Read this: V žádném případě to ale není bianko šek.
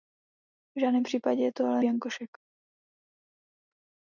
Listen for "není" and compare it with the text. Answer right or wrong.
wrong